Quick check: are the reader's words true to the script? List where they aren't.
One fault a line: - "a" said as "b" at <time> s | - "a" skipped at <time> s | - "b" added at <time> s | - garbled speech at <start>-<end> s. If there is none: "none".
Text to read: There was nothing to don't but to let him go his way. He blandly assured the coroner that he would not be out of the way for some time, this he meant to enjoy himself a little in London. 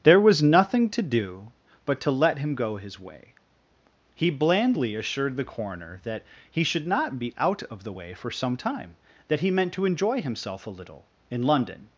- "don't" said as "do" at 1.0 s
- "would" said as "should" at 6.6 s
- "this" said as "that" at 9.3 s